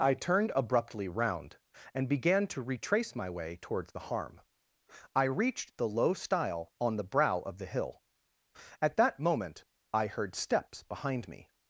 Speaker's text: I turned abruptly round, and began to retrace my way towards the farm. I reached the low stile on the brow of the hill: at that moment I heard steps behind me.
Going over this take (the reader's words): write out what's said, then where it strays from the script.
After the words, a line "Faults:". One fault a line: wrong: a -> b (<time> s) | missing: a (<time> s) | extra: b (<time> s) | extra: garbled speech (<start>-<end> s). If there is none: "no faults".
I turned abruptly round, and began to retrace my way towards the harm. I reached the low stile on the brow of the hill: at that moment I heard steps behind me.
Faults:
wrong: farm -> harm (4.0 s)